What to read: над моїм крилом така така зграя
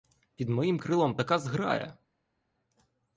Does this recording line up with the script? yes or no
no